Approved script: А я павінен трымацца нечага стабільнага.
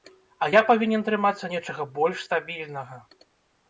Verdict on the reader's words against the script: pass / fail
fail